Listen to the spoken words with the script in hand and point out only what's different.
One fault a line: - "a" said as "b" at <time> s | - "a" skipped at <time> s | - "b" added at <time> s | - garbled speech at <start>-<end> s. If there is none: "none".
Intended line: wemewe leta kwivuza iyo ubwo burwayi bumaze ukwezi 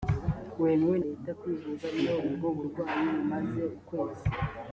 none